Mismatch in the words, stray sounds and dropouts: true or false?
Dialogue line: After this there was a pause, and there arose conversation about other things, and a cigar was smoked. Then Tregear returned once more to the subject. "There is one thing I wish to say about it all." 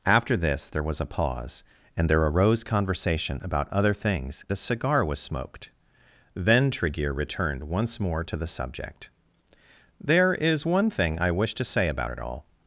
true